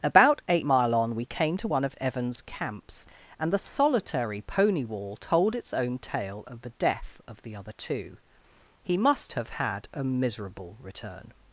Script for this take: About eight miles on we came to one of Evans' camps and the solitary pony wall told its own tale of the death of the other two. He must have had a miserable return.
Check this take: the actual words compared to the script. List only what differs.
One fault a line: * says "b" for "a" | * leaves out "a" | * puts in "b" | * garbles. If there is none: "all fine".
* says "mile" for "miles"